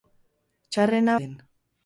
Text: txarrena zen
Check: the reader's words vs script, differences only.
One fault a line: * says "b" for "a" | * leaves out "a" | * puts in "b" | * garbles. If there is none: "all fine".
all fine